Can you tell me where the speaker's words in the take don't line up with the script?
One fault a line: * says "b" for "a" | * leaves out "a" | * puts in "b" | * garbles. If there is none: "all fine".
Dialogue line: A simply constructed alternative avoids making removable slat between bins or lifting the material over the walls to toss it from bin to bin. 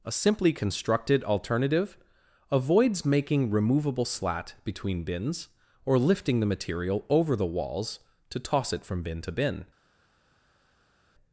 all fine